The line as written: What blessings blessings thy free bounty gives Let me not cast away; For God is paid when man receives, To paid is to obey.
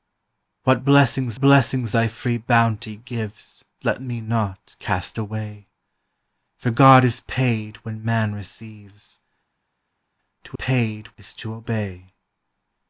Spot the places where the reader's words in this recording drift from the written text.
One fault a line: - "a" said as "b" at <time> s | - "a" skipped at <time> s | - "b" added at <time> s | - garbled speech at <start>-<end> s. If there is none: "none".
none